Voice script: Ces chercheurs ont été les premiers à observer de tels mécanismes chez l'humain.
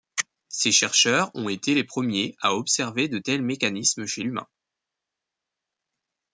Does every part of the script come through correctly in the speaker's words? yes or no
yes